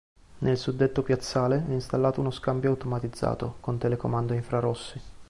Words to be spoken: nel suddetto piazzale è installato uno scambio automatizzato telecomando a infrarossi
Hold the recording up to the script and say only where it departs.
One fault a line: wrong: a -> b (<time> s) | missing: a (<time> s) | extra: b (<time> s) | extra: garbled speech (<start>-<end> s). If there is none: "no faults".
extra: con (3.6 s)